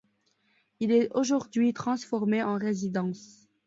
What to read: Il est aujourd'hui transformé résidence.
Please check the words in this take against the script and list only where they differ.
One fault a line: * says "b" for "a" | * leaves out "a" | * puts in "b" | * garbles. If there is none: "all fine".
* puts in "en"